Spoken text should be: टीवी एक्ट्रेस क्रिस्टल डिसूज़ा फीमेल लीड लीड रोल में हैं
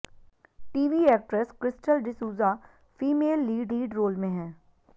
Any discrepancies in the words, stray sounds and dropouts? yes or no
no